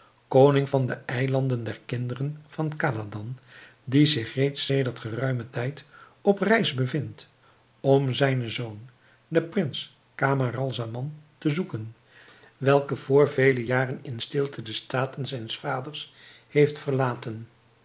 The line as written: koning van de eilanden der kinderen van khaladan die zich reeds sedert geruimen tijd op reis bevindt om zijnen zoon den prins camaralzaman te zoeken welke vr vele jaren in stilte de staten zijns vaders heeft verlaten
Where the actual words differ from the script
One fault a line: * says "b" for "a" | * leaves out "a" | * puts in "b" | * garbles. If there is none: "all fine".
all fine